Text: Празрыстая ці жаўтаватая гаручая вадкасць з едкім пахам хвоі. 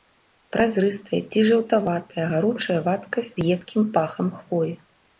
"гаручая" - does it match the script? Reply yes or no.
yes